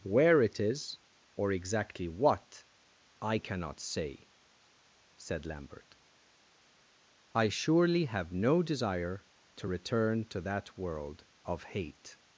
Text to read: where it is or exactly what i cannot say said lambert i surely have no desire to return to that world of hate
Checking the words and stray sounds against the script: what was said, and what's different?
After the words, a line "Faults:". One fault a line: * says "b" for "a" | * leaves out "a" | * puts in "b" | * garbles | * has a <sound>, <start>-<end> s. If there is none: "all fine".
where it is or exactly what i cannot say said lambert i surely have no desire to return to that world of hate
Faults:
all fine